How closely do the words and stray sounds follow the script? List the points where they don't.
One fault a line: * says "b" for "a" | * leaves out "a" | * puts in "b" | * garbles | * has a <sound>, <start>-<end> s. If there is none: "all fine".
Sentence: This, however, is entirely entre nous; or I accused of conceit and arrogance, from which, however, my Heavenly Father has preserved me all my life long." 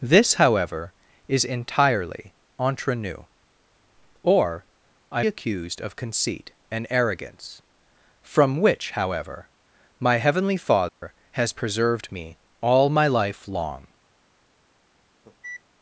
* has a dropout, 10.9-11.0 s
* has a cough, 15.2-15.6 s